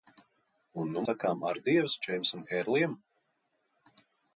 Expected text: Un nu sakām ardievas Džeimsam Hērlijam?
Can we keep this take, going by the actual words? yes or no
yes